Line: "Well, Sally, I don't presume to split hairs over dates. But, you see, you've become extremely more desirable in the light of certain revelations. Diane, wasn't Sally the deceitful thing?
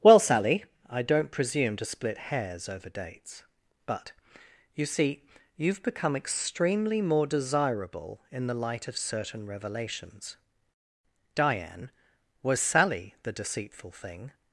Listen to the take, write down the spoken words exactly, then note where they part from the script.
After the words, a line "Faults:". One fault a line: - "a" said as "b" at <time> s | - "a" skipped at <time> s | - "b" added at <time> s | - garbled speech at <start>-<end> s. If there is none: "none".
"Well, Sally, I don't presume to split hairs over dates. But, you see, you've become extremely more desirable in the light of certain revelations. Diane, was Sally the deceitful thing?
Faults:
- "wasn't" said as "was" at 12.4 s